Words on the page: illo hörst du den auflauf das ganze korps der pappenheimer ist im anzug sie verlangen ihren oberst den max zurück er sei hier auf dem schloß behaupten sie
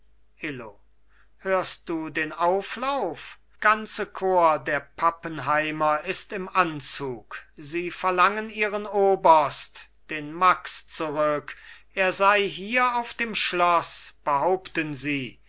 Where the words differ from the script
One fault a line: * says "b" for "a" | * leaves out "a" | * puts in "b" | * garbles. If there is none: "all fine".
* leaves out "das"